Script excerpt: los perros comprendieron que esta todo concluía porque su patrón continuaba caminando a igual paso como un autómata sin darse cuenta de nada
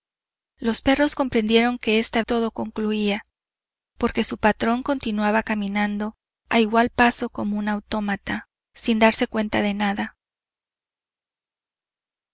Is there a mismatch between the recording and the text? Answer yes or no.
no